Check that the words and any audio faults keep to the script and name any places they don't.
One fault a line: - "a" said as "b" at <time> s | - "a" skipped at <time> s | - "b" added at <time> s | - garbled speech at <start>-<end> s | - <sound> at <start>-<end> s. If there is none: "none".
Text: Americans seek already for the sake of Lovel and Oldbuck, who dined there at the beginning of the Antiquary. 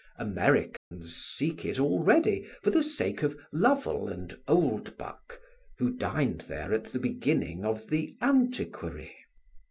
- dropout at 0.8-0.9 s
- "it" added at 1.6 s